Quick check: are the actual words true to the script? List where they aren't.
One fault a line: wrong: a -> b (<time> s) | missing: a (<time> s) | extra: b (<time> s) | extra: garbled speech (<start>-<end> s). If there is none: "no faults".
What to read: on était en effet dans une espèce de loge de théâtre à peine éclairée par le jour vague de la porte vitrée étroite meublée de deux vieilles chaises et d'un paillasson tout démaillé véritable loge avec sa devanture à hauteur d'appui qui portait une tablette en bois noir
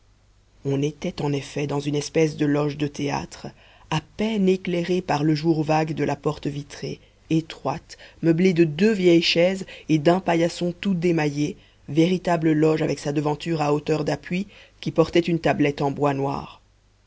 no faults